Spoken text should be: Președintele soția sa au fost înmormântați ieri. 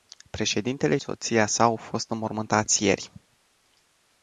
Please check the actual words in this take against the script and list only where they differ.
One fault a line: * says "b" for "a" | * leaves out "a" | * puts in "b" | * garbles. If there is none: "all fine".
all fine